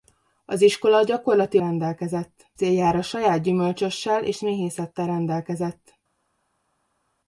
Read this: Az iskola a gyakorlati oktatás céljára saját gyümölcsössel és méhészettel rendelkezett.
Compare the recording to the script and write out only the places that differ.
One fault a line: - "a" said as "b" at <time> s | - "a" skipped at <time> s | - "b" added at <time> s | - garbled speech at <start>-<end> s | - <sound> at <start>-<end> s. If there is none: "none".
- "oktatás" said as "rendelkezett" at 1.6 s